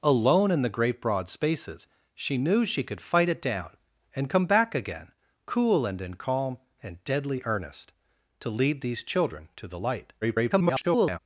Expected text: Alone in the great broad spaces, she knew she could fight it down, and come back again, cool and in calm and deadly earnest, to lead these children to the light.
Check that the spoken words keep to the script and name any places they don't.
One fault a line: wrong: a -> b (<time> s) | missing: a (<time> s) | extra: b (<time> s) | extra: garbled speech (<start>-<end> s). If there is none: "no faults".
extra: garbled speech (10.2-11.2 s)